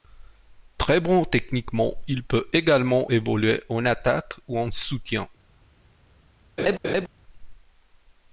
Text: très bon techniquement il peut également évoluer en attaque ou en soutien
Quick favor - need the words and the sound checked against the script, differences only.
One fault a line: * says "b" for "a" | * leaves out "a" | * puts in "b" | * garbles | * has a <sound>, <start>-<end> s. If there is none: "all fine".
* has a laugh, 6.6-7.1 s